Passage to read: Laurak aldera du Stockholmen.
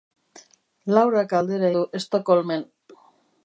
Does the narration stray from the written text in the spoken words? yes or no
no